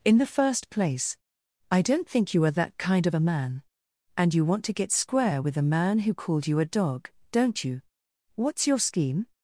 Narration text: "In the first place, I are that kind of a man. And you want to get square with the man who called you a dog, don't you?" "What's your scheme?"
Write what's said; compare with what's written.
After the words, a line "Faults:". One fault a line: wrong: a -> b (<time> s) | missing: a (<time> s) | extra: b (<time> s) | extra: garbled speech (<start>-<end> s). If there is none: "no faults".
"In the first place, I don't think you are that kind of a man. And you want to get square with the man who called you a dog, don't you?" "What's your scheme?"
Faults:
extra: don't think you (1.8 s)